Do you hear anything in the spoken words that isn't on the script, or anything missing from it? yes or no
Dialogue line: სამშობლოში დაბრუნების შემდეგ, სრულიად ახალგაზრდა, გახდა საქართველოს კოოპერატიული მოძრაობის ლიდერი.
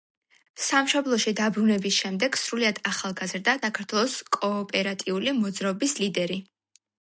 yes